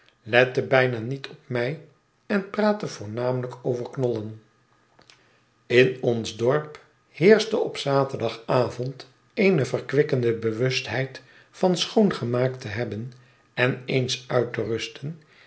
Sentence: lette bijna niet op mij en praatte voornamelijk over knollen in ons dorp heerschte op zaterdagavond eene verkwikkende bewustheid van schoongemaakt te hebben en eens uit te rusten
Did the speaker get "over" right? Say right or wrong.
right